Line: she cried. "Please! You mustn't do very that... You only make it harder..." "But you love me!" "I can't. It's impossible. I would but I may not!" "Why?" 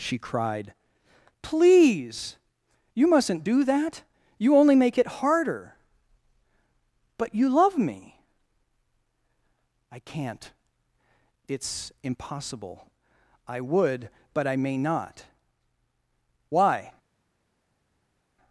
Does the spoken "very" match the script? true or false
false